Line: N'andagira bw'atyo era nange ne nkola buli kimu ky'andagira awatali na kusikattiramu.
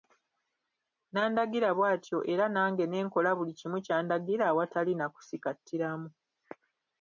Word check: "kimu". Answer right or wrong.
right